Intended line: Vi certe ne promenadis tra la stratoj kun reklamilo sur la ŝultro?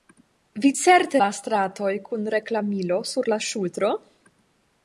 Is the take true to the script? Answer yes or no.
no